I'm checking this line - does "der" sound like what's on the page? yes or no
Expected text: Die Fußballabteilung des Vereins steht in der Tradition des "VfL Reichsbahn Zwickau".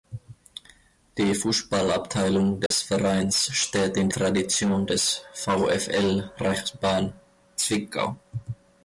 no